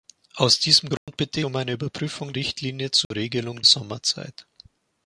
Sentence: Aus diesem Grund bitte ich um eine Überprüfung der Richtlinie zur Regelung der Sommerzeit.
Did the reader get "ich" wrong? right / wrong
wrong